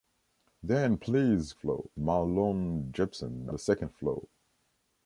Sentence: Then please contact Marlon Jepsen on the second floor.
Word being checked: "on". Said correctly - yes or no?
no